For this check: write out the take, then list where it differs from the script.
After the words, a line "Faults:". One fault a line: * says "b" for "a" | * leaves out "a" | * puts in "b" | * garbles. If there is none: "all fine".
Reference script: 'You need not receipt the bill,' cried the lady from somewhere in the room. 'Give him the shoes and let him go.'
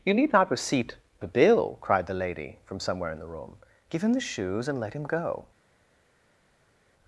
'You need not receipt the bill,' cried the lady from somewhere in the room. 'Give him the shoes and let him go.'
Faults:
all fine